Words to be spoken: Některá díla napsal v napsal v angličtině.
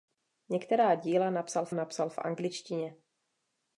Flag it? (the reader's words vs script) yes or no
no